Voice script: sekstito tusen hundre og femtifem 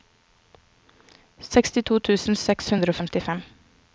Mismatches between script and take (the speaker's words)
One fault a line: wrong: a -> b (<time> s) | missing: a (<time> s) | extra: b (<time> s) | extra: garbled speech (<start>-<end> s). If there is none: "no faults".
extra: seks (2.5 s)